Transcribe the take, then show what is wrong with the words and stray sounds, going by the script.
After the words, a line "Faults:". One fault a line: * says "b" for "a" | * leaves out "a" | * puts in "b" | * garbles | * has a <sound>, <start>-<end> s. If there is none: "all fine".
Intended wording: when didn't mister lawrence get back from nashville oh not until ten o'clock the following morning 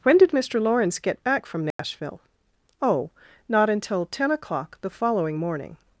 when did mister lawrence get back from nashville oh not until ten o'clock the following morning
Faults:
* says "did" for "didn't"
* has a dropout, 1.7-1.8 s